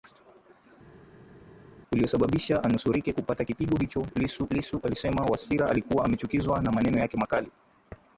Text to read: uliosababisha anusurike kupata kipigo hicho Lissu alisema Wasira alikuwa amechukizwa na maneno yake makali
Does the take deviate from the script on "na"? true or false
false